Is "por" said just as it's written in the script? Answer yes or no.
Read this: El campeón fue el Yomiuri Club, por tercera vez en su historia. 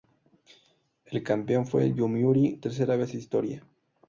no